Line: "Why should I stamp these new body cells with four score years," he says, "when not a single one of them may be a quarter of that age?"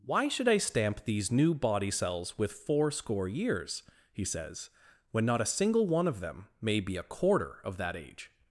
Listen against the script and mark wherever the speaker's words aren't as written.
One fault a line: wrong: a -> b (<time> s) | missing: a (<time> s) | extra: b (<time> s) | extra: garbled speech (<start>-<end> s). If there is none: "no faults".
no faults